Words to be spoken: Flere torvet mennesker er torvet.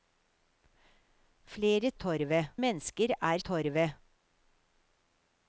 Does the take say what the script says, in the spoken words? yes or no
yes